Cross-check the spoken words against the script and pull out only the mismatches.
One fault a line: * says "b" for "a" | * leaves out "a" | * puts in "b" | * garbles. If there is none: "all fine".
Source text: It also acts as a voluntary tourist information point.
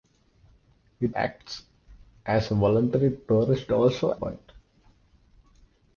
* leaves out "also"
* says "also" for "information"